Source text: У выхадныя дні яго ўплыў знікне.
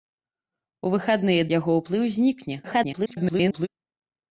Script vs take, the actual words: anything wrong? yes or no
yes